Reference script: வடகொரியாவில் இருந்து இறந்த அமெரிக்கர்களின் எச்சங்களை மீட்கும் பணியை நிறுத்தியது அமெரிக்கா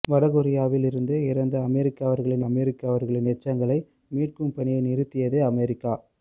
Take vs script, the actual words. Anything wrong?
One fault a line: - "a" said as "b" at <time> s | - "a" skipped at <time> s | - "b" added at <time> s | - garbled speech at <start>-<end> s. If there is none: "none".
- "அமெரிக்கர்களின்" added at 2.4 s